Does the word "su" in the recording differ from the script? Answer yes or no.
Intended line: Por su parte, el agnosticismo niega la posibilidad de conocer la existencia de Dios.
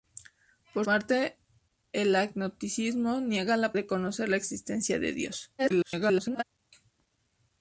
yes